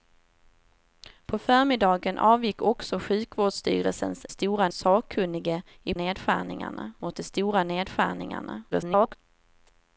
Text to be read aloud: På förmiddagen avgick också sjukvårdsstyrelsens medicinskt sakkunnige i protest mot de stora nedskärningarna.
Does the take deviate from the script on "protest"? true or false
true